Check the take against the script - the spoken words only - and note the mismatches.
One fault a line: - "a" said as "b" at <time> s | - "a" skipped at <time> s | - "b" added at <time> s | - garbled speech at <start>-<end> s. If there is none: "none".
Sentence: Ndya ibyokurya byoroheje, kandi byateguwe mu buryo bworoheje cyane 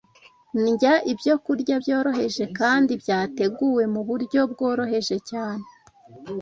none